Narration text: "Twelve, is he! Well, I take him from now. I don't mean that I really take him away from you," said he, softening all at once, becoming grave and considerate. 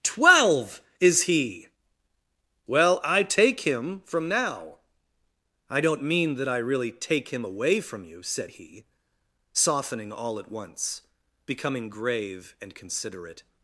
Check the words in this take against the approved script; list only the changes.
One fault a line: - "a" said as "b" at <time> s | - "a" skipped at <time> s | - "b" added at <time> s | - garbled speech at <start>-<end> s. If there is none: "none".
none